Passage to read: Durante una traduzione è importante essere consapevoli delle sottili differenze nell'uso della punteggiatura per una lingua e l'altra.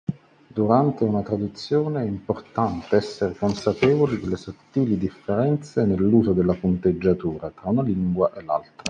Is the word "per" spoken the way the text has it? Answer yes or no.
no